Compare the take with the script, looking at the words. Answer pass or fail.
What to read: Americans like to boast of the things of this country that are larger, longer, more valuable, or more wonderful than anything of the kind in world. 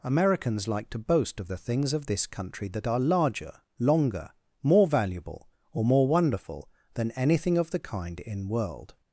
pass